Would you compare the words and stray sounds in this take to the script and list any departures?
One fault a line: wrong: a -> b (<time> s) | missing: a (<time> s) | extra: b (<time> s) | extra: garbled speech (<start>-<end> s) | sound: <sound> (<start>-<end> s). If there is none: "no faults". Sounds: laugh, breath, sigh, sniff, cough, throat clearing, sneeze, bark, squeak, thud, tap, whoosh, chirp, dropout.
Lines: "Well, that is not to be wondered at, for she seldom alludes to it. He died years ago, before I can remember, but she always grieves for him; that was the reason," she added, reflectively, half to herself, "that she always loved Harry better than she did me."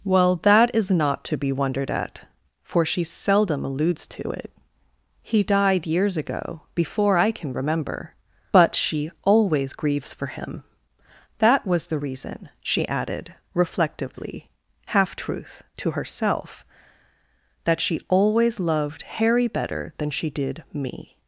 extra: truth (15.2 s)